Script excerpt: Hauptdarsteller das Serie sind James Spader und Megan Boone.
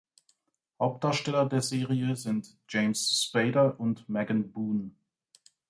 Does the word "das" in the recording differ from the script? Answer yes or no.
yes